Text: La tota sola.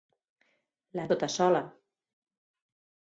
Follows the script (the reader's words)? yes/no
yes